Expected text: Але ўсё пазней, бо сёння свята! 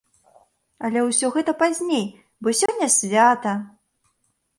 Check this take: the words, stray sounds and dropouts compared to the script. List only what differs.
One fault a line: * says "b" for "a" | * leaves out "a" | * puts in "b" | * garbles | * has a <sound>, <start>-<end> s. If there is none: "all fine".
* puts in "гэта"
* has a dropout, 2.7-2.7 s